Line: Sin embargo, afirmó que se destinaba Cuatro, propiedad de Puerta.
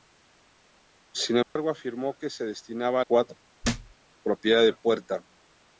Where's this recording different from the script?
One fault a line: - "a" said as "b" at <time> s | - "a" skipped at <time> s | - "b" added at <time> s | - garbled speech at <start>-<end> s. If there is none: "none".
none